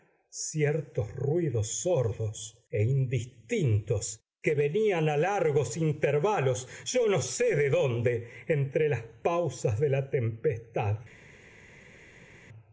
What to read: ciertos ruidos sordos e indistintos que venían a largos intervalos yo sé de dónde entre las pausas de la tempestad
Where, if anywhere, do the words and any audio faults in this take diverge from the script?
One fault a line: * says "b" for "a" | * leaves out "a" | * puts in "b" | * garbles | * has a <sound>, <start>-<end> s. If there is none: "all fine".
* puts in "no"